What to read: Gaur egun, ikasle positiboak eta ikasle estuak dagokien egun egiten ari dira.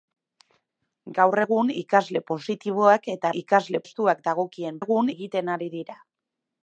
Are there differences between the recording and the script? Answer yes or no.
no